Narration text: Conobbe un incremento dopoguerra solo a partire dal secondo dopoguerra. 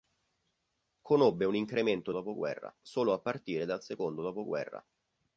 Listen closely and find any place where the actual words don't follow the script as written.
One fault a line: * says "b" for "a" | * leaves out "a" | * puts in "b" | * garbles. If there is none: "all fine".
all fine